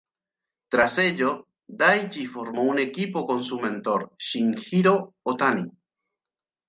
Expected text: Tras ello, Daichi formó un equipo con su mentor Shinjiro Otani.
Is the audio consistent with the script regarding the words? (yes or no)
yes